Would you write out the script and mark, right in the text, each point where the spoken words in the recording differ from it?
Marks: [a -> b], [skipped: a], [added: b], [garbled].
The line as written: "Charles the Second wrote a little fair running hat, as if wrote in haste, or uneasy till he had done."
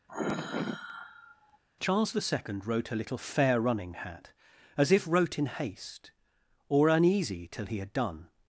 "Charles the Second wrote a little fair running hat, as if wrote in haste, or uneasy till he had done."